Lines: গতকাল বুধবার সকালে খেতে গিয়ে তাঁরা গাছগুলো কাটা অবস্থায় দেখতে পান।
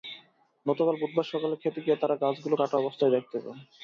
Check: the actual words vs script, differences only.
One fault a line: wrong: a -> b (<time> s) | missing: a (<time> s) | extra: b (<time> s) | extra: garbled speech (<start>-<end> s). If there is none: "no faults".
no faults